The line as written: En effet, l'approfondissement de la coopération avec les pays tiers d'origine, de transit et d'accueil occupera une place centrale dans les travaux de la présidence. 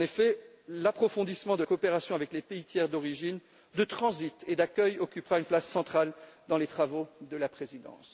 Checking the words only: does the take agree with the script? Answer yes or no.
no